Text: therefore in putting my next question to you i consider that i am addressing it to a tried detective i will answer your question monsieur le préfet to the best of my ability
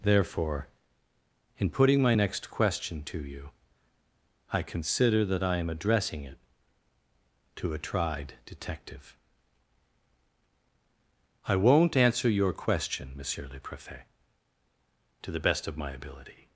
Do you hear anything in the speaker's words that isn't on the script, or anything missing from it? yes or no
yes